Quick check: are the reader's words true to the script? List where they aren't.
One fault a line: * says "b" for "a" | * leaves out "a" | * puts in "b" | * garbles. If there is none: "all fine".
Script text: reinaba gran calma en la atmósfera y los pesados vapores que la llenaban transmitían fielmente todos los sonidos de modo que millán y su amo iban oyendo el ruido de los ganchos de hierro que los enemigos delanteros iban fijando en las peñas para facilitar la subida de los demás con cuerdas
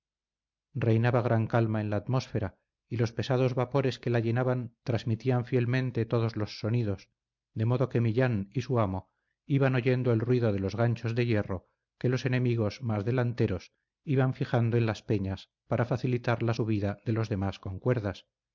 * puts in "más"